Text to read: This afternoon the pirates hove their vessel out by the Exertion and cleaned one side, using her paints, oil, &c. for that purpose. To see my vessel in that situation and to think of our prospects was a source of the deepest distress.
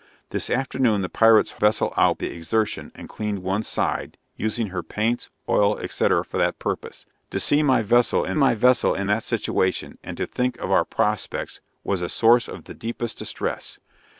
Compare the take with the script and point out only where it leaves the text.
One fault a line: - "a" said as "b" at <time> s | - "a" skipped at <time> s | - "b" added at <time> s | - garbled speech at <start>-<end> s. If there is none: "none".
- "hove their" skipped at 1.5 s
- "by" skipped at 2.2 s
- "my vessel in" added at 8.3 s